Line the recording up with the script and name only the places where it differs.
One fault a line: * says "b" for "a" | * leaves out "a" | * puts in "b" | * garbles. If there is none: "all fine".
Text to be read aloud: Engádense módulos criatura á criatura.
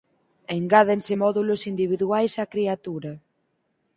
* says "individuais" for "criatura"